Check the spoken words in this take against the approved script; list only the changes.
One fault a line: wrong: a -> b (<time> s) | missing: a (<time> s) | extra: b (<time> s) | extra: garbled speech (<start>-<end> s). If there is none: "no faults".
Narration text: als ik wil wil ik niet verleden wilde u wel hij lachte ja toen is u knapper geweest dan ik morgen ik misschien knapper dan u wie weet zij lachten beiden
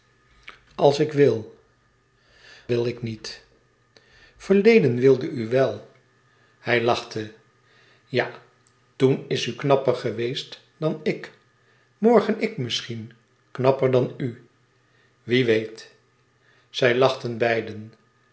no faults